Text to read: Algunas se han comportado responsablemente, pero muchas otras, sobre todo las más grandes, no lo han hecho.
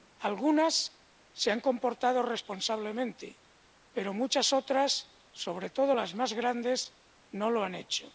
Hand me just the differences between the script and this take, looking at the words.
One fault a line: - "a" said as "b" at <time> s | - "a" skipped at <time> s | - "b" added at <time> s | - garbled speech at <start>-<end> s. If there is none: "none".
none